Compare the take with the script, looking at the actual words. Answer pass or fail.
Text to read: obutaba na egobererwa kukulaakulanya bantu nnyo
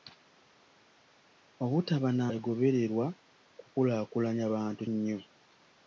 pass